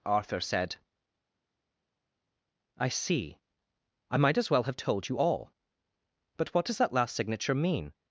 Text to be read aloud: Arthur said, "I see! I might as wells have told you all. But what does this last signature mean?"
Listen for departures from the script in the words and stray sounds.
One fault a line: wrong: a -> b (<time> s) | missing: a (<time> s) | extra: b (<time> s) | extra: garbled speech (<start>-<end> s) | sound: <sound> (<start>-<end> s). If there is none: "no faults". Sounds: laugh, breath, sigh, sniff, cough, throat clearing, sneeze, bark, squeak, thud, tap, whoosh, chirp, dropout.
wrong: wells -> well (4.5 s)
wrong: this -> that (6.8 s)